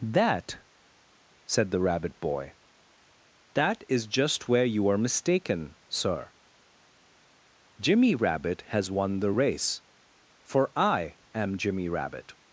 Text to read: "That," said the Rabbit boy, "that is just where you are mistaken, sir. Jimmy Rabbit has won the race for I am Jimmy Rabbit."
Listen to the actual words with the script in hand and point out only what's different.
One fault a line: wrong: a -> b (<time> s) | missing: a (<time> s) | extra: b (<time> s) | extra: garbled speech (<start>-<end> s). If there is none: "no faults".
no faults